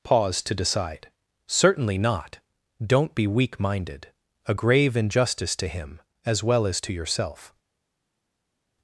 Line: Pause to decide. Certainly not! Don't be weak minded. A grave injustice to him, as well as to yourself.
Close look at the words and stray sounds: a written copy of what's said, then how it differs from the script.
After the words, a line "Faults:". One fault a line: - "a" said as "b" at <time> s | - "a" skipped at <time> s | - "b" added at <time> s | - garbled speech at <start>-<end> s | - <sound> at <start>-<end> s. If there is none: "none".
Pause to decide. Certainly not! Don't be weak minded. A grave injustice to him, as well as to yourself.
Faults:
none